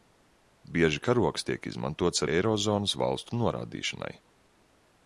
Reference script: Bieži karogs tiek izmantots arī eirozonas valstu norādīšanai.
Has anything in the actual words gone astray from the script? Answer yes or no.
yes